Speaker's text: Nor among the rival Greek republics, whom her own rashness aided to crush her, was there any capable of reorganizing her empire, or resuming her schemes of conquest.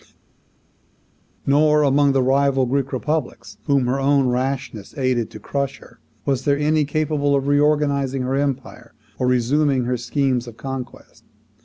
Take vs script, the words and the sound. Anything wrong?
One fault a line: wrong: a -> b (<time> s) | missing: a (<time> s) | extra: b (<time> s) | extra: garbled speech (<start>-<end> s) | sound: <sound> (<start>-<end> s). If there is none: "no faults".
no faults